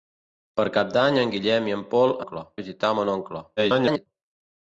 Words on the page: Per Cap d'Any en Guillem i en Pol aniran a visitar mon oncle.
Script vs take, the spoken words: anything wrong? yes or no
yes